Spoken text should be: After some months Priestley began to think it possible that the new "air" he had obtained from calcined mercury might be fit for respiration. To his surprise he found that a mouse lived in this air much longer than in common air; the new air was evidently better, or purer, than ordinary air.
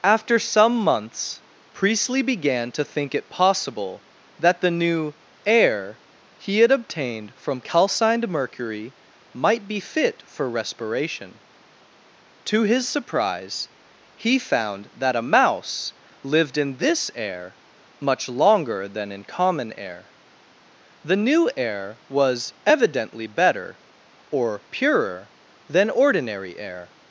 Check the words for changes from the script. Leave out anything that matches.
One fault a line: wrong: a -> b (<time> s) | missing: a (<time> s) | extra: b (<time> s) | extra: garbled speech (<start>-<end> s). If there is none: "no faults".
no faults